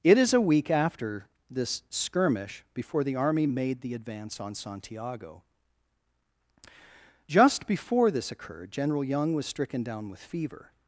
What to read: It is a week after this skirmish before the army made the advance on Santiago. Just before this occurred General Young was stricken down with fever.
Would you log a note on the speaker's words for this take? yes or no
no